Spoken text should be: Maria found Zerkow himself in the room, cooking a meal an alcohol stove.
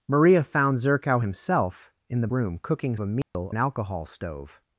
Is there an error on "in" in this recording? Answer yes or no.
no